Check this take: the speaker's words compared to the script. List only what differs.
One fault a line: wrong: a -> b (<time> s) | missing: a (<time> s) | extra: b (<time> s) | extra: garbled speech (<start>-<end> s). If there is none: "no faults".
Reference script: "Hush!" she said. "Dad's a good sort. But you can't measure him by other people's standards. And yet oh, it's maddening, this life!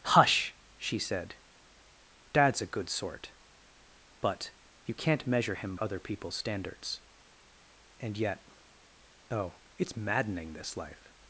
missing: by (5.8 s)